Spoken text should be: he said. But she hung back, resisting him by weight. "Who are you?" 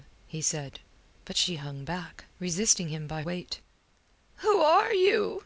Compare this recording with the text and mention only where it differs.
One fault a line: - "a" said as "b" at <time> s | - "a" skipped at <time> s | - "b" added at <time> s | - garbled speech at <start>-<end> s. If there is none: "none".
none